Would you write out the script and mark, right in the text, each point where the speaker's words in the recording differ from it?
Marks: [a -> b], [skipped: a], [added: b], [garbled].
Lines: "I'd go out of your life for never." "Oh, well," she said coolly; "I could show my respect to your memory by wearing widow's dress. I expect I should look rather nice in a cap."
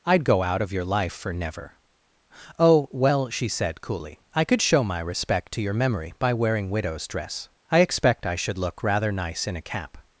"I'd go out of your life for never." "Oh, well," she said coolly; "I could show my respect to your memory by wearing widow's dress. I expect I should look rather nice in a cap."